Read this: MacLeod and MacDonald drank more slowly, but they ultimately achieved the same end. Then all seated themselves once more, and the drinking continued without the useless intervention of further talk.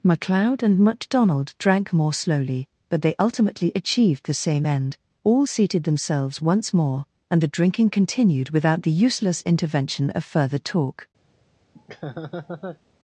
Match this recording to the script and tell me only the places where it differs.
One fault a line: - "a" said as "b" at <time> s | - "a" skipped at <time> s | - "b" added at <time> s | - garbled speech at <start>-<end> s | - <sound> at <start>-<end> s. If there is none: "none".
- "Then" skipped at 5.0 s
- laugh at 11.7-12.8 s